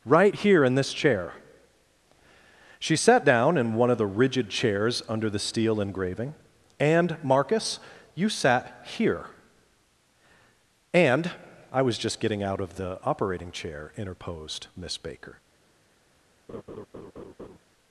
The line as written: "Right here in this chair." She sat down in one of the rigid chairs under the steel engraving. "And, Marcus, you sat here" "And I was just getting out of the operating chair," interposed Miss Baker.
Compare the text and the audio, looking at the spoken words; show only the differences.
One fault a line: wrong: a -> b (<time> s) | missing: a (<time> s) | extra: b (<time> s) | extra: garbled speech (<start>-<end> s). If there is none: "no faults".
no faults